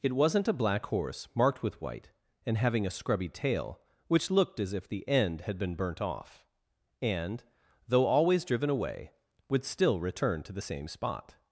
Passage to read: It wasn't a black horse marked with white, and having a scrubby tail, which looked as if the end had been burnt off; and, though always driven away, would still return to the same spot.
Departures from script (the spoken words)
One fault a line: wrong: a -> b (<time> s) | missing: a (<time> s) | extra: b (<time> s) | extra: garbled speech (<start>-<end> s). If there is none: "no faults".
no faults